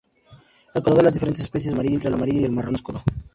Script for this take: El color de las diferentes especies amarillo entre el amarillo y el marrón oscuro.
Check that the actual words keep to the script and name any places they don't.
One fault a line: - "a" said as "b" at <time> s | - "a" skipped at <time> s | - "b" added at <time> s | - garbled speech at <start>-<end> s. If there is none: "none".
none